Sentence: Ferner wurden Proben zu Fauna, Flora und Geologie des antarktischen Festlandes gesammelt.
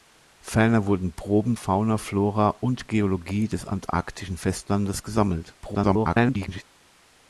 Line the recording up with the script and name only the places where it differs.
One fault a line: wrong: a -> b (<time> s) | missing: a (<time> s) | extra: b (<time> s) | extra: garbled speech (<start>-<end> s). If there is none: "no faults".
missing: zu (1.6 s)
extra: garbled speech (5.6-6.6 s)